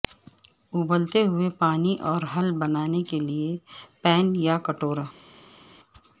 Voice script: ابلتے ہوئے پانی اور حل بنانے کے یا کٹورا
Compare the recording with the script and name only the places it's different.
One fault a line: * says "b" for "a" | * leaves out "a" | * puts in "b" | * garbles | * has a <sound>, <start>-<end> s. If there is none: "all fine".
* puts in "لئے پین"